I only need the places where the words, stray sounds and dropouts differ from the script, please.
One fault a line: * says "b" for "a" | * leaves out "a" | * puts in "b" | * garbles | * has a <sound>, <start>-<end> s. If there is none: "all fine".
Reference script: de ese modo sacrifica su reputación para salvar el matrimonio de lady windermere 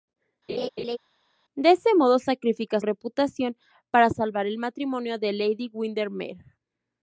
* has a laugh, 0.5-1.0 s
* leaves out "su"